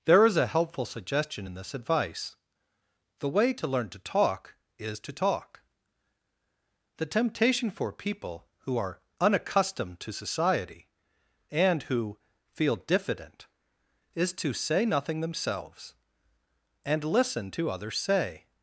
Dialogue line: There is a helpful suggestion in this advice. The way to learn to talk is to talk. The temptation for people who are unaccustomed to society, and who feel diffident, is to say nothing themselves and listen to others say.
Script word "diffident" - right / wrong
right